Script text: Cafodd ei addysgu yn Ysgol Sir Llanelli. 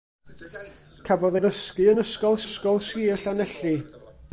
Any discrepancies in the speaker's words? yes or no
yes